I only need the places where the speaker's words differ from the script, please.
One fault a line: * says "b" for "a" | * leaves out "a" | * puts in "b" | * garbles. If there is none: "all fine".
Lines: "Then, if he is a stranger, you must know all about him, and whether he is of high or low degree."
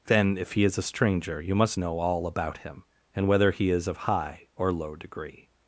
all fine